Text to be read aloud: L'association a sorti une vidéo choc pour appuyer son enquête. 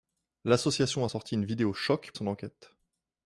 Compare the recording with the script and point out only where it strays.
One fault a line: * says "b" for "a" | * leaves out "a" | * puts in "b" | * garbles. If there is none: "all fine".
* leaves out "pour appuyer"